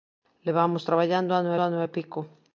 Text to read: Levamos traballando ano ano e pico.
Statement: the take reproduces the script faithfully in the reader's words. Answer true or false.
true